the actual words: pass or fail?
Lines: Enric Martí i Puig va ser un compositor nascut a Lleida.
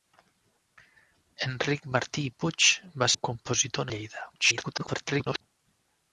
fail